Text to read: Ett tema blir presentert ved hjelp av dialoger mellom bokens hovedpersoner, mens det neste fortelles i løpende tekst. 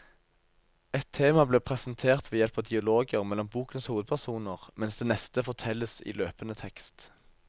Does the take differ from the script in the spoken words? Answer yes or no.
no